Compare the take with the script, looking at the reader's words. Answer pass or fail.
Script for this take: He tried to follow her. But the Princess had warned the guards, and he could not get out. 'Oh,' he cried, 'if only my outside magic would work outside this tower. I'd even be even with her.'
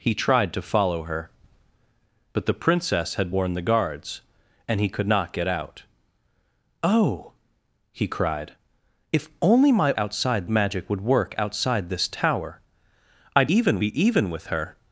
pass